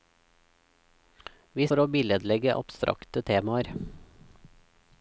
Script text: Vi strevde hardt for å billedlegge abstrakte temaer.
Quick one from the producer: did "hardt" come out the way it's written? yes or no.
no